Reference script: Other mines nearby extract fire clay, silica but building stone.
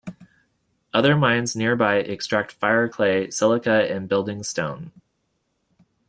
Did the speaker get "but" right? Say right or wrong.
wrong